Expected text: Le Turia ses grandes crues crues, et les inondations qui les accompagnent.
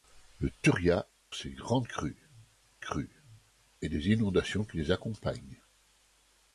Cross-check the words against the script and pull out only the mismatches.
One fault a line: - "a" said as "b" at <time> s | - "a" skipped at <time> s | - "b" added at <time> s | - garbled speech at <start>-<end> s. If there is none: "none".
none